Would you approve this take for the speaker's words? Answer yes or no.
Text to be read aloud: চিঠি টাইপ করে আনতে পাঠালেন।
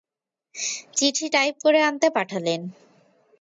yes